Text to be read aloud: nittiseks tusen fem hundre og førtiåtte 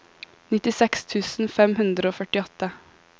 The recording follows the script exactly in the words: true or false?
true